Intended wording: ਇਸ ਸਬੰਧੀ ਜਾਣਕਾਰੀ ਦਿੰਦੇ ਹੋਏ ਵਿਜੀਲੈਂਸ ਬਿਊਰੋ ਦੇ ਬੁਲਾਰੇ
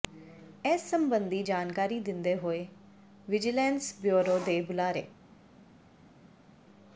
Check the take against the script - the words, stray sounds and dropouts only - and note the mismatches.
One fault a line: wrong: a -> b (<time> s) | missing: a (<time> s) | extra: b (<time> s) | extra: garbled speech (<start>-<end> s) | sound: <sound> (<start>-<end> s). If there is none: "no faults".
no faults